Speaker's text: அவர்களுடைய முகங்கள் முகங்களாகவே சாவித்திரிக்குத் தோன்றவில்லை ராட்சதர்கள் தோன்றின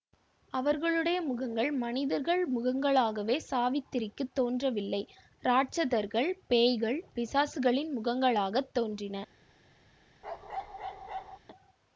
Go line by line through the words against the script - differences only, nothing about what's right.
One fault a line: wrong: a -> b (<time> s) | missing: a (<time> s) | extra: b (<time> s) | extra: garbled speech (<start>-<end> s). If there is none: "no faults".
extra: மனிதர்கள் (1.8 s)
extra: பேய்கள் பிசாசுகளின் முகங்களாகத் (6.5 s)